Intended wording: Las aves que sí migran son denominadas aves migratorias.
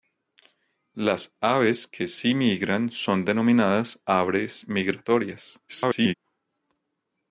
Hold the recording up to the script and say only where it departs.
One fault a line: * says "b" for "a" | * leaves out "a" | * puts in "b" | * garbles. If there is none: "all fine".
* garbles